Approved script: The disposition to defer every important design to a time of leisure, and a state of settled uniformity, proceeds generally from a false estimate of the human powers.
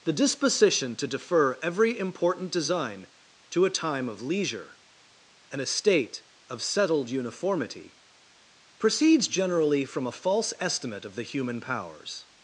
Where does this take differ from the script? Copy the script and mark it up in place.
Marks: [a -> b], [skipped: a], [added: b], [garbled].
The disposition to defer every important design to a time of leisure, and a state of settled uniformity, proceeds generally from a false estimate of the human powers.